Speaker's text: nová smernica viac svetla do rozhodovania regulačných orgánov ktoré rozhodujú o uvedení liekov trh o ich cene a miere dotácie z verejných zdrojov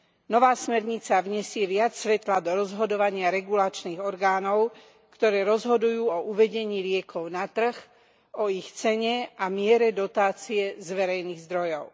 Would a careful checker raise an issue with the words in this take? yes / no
yes